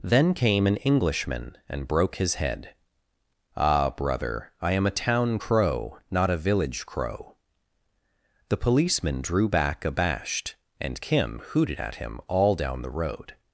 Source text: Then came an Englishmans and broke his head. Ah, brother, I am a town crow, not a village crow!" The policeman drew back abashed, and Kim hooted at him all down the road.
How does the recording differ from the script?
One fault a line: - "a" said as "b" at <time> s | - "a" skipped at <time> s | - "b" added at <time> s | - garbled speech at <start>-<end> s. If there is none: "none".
- "Englishmans" said as "Englishman" at 0.8 s